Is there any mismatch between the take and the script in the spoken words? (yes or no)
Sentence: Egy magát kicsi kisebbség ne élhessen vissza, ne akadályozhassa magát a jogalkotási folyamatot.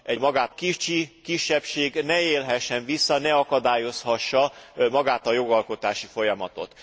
no